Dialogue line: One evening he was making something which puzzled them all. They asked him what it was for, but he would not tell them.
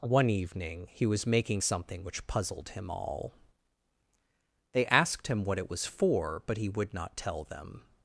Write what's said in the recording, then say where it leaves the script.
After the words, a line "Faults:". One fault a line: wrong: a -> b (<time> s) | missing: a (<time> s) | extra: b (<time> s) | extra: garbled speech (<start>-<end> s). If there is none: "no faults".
One evening he was making something which puzzled him all. They asked him what it was for, but he would not tell them.
Faults:
wrong: them -> him (2.7 s)